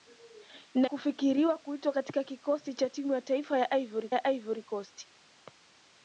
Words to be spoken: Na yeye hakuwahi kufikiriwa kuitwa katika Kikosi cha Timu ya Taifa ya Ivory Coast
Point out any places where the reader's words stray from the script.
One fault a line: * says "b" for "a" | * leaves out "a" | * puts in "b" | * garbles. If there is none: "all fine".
* leaves out "yeye hakuwahi"
* puts in "ya Ivory"